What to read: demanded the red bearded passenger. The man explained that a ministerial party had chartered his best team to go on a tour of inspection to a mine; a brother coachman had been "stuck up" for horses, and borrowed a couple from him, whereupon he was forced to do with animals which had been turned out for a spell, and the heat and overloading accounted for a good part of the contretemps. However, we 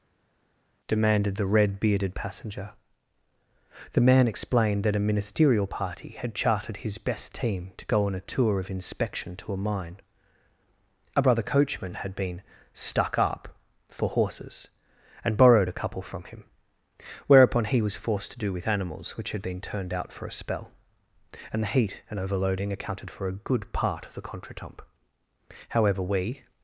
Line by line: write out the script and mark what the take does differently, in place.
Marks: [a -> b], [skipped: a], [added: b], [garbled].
demanded the red bearded passenger. The man explained that a ministerial party had chartered his best team to go on a tour of inspection to a mine; a brother coachman had been "stuck up" for horses, and borrowed a couple from him, whereupon he was forced to do with animals which had been turned out for a spell, and the heat and overloading accounted for a good part of the contretemps. However, we